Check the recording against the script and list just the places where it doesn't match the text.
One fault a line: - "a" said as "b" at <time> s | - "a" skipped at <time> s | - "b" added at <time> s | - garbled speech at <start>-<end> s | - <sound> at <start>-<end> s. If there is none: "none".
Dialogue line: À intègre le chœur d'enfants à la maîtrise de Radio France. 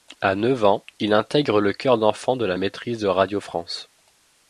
- "neuf ans il" added at 0.3 s
- "à" said as "de" at 2.4 s